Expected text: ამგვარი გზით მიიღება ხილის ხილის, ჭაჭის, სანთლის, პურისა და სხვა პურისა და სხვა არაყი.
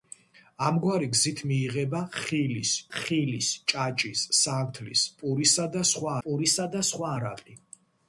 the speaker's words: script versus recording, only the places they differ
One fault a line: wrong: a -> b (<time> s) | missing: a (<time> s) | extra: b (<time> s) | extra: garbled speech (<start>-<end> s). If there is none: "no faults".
no faults